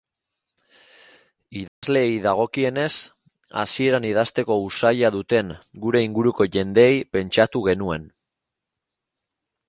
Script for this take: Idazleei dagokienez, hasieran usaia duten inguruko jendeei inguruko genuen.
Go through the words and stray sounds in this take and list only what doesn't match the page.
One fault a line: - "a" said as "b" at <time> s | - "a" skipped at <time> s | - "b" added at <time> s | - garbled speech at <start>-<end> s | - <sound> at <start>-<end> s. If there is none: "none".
- dropout at 1.7-1.8 s
- "idazteko" added at 4.1 s
- "gure" added at 5.8 s
- "inguruko" said as "pentsatu" at 7.2 s